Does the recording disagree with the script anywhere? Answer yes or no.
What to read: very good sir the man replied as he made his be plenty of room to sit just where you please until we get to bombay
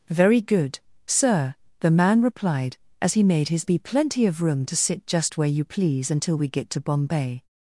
no